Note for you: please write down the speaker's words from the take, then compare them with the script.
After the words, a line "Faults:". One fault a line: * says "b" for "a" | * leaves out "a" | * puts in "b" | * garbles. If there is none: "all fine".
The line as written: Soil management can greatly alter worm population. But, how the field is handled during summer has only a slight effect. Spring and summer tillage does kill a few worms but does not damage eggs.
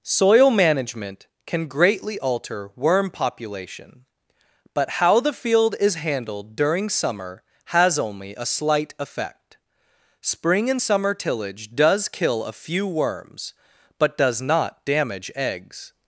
Soil management can greatly alter worm population. But, how the field is handled during summer has only a slight effect. Spring and summer tillage does kill a few worms but does not damage eggs.
Faults:
all fine